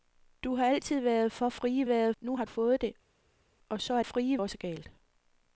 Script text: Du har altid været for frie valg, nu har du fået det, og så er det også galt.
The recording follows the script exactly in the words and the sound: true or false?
false